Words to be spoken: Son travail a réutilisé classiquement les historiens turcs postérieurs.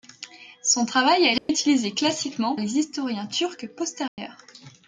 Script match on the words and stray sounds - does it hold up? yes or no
no